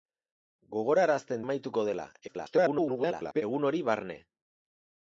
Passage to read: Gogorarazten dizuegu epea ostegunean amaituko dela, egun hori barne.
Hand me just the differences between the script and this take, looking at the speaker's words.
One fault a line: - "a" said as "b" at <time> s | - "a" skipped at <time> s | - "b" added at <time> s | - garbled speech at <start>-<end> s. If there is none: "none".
- "dizuegu epea ostegunean" skipped at 1.4 s
- garbled speech at 2.3-3.4 s